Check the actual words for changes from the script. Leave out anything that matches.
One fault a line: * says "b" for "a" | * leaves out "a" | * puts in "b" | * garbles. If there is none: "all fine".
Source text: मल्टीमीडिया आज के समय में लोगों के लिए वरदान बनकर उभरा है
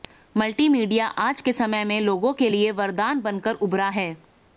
all fine